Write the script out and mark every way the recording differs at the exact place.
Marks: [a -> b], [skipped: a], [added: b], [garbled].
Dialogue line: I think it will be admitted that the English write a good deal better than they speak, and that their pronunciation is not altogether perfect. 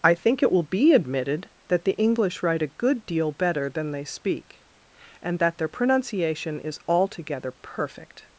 I think it will be admitted that the English write a good deal better than they speak, and that their pronunciation is [skipped: not] altogether perfect.